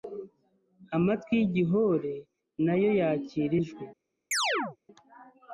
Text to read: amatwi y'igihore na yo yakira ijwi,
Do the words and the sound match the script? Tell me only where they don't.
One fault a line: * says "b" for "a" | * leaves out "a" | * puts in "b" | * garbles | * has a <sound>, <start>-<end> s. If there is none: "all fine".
* has a chirp, 4.3-4.8 s